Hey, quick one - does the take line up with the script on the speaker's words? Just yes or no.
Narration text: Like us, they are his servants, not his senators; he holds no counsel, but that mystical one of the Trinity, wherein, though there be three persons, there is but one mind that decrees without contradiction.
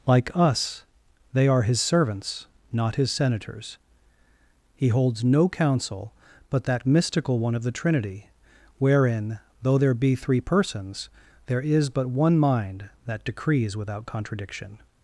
yes